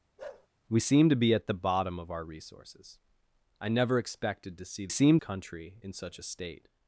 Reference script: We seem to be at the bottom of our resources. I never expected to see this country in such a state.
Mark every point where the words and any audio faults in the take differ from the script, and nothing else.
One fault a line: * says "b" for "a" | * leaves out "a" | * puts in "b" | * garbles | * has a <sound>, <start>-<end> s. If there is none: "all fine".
* has a bark, 0.2-0.5 s
* says "seem" for "this"